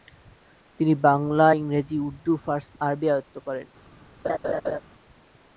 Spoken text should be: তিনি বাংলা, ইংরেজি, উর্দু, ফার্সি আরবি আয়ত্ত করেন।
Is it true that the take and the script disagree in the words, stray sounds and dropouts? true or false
true